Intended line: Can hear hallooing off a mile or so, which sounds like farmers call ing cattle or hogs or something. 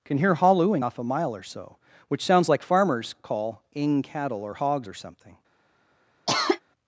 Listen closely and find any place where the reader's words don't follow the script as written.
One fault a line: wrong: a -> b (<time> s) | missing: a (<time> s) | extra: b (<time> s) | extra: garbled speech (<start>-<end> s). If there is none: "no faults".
no faults